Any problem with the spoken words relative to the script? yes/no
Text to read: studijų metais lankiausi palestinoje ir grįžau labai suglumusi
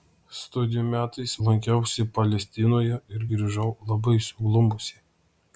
no